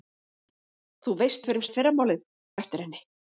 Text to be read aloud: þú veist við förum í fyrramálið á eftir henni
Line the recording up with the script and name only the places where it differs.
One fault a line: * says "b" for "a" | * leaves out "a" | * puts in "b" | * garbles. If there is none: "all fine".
all fine